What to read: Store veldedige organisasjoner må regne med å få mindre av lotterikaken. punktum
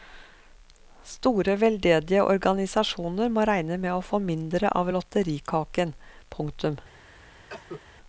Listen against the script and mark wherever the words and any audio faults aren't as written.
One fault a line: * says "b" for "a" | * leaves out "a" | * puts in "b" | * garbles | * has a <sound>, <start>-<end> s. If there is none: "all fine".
* has a cough, 7.5-7.8 s